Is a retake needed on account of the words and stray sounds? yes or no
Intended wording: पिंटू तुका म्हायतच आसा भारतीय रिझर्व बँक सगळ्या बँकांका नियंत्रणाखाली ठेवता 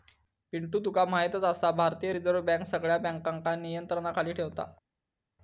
no